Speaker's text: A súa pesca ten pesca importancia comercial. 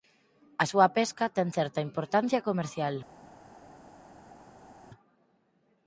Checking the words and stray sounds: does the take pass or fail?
fail